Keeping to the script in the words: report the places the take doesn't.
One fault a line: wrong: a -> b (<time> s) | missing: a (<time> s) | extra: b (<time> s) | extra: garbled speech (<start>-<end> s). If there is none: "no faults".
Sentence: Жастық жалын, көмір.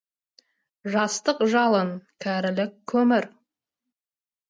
extra: кәрілік (2.3 s)